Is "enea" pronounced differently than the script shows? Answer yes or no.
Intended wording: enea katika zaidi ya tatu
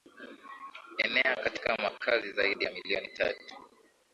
no